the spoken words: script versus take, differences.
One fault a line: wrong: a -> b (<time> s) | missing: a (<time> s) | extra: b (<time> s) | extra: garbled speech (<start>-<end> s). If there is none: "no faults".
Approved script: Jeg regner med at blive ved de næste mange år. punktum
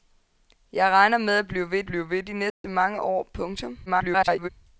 extra: blive ved (1.8 s)
extra: garbled speech (3.9-4.5 s)